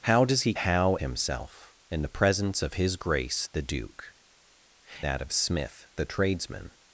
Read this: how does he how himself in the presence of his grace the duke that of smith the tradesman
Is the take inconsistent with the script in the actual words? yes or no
no